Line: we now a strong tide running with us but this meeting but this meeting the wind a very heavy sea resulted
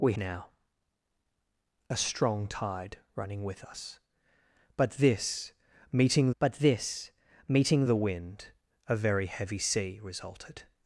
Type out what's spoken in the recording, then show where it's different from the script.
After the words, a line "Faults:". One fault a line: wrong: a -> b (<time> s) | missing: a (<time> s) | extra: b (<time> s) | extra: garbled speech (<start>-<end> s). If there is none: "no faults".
we now a strong tide running with us but this meeting but this meeting the wind a very heavy sea resulted
Faults:
no faults